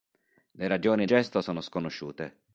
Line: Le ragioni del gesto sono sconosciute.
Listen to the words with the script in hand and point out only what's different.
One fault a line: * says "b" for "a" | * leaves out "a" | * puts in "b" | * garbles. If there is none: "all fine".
* leaves out "del"